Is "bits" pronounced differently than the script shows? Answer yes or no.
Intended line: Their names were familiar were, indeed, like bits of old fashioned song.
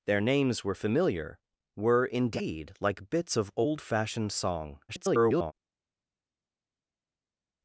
no